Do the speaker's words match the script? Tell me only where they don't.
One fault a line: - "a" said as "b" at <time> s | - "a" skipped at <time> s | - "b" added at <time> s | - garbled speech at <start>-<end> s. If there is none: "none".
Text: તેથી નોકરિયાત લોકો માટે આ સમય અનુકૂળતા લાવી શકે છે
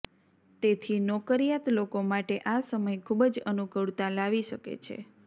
- "ખૂબ જ" added at 3.0 s